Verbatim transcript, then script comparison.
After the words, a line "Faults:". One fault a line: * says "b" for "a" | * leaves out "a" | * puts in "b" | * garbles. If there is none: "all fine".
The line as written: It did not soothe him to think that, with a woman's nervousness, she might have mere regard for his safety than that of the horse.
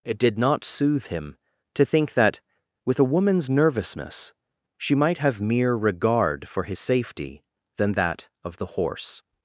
It did not soothe him to think that, with a woman's nervousness, she might have mere regard for his safety than that of the horse.
Faults:
all fine